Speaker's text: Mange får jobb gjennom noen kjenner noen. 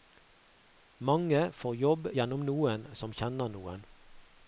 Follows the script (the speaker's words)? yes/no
no